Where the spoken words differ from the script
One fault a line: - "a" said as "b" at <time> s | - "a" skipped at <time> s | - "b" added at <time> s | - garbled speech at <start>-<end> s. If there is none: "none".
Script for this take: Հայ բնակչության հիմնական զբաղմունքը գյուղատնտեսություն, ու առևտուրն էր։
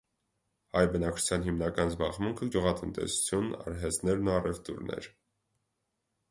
- "արհեստներն" added at 3.7 s